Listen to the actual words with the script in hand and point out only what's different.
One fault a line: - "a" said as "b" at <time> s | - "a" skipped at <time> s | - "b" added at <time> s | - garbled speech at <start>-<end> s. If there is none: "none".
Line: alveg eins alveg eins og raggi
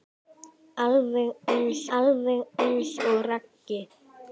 none